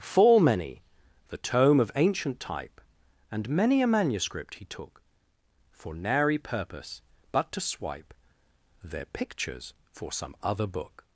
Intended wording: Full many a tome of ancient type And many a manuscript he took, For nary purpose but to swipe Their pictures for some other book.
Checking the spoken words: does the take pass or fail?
fail